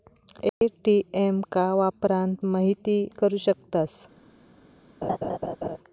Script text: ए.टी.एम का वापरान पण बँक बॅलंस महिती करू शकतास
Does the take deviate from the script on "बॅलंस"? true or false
true